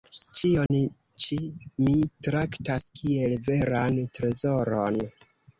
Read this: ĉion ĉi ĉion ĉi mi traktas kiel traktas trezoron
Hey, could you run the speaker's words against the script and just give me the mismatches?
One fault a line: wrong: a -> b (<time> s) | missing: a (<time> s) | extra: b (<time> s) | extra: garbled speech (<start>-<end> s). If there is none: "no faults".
missing: ĉion ĉi (1.4 s)
wrong: traktas -> veran (3.5 s)